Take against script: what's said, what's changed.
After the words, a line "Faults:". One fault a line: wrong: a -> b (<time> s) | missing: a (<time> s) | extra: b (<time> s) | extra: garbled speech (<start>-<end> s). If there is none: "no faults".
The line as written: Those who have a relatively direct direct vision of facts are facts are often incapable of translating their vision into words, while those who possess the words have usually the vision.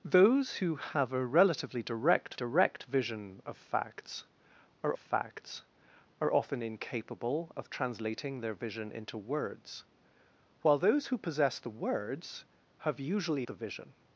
Those who have a relatively direct direct vision of facts are facts are often incapable of translating their vision into words, while those who possess the words have usually the vision.
Faults:
no faults